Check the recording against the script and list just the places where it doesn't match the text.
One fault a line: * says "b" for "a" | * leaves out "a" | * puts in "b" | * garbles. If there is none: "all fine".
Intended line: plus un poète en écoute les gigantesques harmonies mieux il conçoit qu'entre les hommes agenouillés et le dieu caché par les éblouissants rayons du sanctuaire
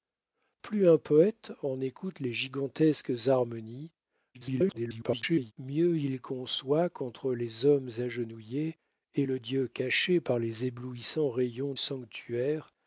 * garbles
* leaves out "du"